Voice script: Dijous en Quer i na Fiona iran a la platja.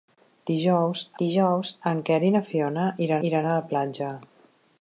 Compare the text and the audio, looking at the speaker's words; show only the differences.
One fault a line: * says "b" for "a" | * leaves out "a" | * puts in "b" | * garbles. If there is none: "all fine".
* puts in "dijous"
* puts in "iran"